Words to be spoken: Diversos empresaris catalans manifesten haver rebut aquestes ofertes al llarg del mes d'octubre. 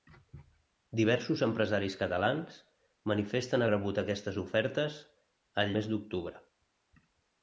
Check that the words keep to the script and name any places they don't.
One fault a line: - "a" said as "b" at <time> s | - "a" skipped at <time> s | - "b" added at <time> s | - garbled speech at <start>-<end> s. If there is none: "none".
- "haver" skipped at 3.6 s
- "llarg del" skipped at 5.8 s